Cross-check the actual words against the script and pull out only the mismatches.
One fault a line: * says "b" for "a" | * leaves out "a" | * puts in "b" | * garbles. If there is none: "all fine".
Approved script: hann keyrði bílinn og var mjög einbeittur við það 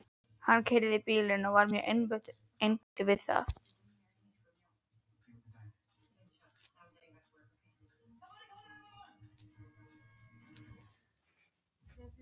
all fine